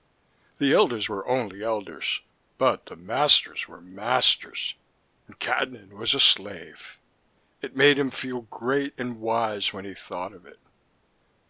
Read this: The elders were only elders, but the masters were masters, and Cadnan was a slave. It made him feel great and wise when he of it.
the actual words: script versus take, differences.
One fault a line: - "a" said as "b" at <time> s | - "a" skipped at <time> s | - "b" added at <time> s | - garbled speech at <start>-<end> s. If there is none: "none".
- "thought" added at 9.9 s